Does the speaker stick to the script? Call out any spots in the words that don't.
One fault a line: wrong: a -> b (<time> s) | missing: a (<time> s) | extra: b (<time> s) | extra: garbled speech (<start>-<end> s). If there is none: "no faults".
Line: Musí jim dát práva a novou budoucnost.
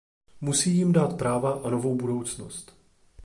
no faults